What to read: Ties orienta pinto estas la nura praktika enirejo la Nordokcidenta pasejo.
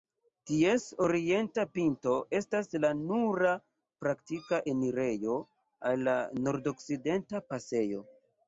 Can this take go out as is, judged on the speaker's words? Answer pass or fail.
fail